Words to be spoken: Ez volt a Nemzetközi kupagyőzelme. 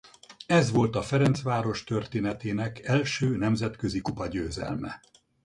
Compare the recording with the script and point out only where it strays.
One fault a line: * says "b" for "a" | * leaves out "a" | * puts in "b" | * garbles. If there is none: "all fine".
* puts in "Ferencváros történetének első"